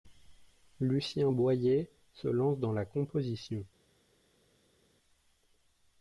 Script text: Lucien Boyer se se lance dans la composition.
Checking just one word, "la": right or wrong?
right